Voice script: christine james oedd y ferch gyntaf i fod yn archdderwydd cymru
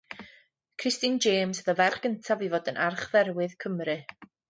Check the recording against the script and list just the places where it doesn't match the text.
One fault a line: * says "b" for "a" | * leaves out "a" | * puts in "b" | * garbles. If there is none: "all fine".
all fine